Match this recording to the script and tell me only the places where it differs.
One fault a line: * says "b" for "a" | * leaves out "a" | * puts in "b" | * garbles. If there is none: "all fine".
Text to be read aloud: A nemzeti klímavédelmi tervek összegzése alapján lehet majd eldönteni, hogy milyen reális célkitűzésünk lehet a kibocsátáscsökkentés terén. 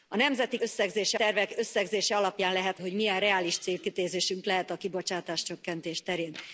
* says "összegzése" for "klímavédelmi"
* leaves out "majd eldönteni"